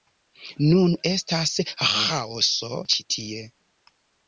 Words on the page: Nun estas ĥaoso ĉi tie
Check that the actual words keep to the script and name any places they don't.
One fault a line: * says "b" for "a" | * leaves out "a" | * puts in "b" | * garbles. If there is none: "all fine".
all fine